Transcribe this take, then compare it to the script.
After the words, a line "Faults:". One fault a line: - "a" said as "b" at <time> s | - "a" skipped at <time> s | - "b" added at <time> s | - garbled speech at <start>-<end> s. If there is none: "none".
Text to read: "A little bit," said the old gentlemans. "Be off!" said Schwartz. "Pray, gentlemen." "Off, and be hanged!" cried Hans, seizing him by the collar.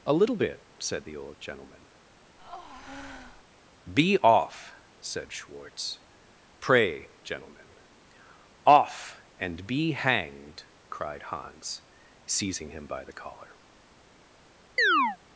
"A little bit," said the old gentleman. "Be off!" said Schwartz. "Pray, gentlemen." "Off, and be hanged!" cried Hans, seizing him by the collar.
Faults:
- "gentlemans" said as "gentleman" at 1.4 s